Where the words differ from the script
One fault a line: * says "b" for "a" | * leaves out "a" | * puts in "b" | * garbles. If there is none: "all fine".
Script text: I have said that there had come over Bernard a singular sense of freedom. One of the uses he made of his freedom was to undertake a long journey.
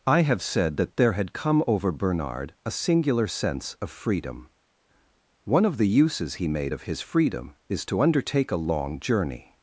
* says "is" for "was"